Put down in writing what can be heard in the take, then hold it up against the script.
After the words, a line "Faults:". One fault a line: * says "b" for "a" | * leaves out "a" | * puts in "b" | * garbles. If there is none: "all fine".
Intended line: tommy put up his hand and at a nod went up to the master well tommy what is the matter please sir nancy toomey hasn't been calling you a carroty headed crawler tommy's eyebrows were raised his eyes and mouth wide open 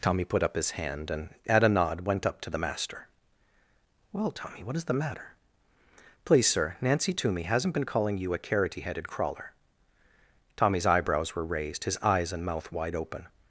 tommy put up his hand and at a nod went up to the master well tommy what is the matter please sir nancy toomey hasn't been calling you a carroty headed crawler tommy's eyebrows were raised his eyes and mouth wide open
Faults:
all fine